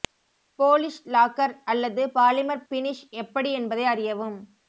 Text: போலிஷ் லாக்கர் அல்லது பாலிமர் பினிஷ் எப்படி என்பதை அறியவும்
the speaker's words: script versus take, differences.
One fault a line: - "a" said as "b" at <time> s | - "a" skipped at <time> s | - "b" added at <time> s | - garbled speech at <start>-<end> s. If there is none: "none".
none